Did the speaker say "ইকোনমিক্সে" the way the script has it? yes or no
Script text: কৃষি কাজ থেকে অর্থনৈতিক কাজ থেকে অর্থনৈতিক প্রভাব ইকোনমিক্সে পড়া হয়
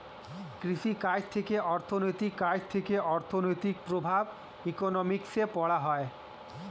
yes